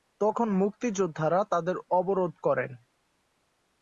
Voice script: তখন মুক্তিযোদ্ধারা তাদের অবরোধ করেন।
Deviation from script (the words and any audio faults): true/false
false